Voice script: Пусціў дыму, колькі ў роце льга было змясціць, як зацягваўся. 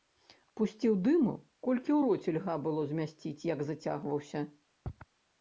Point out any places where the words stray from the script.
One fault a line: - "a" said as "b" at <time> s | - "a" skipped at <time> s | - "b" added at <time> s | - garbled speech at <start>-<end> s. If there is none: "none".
none